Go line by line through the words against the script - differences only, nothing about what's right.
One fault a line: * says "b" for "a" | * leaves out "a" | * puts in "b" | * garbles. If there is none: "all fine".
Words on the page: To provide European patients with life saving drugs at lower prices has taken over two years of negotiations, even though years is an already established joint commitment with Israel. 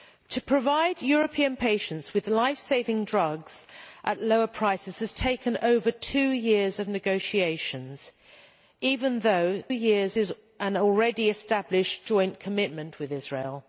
all fine